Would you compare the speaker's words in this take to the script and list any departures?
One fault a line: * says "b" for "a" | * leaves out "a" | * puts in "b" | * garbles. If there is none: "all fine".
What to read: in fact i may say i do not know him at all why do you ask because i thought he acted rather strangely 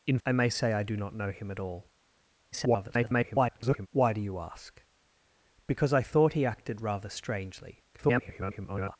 * leaves out "fact"
* garbles
* garbles